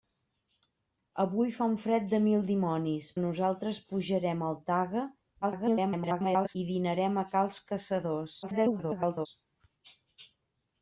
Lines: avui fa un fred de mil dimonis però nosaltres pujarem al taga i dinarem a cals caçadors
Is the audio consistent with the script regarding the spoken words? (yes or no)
no